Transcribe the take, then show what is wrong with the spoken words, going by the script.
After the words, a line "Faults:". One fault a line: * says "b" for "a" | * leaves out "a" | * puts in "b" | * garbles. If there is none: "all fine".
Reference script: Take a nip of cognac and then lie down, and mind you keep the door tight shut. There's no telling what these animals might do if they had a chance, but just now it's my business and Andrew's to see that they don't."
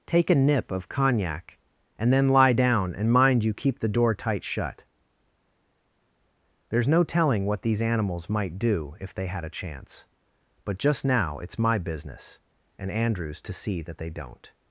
Take a nip of cognac and then lie down, and mind you keep the door tight shut. There's no telling what these animals might do if they had a chance, but just now it's my business and Andrew's to see that they don't."
Faults:
all fine